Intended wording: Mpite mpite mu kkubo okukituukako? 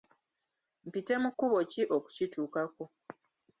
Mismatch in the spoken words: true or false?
true